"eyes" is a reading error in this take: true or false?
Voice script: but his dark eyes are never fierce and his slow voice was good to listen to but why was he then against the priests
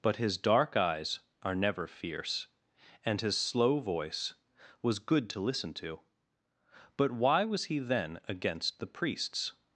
false